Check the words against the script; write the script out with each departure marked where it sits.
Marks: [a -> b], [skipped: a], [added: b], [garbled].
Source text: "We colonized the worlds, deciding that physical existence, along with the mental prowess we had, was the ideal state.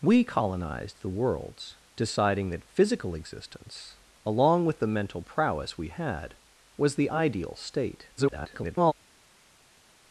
"We colonized the worlds, deciding that physical existence, along with the mental prowess we had, was the ideal state. [garbled]